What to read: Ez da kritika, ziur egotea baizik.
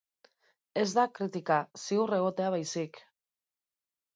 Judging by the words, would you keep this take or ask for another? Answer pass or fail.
pass